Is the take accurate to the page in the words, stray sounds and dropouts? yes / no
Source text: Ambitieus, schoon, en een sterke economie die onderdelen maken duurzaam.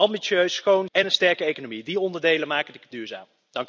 yes